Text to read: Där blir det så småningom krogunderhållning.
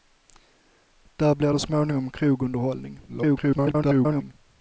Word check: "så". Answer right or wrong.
wrong